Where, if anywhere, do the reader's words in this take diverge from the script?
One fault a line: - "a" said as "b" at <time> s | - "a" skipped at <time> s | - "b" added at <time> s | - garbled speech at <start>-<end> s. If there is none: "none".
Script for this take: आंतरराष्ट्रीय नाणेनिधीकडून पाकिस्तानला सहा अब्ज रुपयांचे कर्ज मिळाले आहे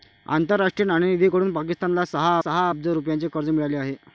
- "सहा" added at 2.4 s